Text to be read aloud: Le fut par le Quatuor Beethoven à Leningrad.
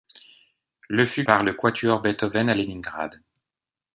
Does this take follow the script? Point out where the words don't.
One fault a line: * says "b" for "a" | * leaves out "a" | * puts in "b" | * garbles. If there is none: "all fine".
all fine